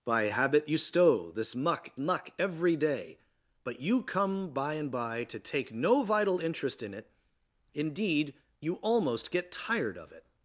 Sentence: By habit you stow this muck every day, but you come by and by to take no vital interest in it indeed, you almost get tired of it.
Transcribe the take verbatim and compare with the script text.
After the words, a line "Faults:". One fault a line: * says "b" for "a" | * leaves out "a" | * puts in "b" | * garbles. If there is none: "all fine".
By habit you stow this muck muck every day, but you come by and by to take no vital interest in it indeed, you almost get tired of it.
Faults:
* puts in "muck"